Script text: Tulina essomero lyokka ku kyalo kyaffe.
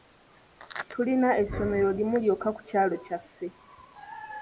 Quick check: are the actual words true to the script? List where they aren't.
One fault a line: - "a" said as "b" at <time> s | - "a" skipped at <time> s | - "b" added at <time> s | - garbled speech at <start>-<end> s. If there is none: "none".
- "limu" added at 2.0 s